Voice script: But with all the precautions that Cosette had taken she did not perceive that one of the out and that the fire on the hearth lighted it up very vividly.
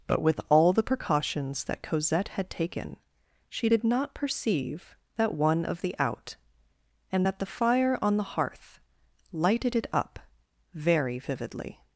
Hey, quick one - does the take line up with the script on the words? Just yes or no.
yes